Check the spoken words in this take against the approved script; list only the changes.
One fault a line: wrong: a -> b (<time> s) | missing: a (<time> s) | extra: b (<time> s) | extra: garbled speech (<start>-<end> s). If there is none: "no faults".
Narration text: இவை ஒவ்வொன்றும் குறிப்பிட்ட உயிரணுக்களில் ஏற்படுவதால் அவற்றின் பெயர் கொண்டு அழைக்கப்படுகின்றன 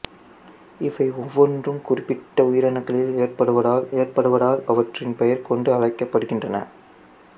extra: ஏற்படுவதால் (4.0 s)